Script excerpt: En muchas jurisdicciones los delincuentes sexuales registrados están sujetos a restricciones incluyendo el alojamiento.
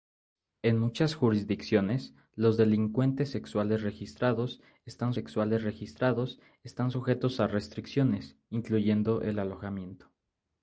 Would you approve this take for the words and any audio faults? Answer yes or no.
no